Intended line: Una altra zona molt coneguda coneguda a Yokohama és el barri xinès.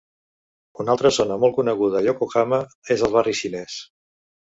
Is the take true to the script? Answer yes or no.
no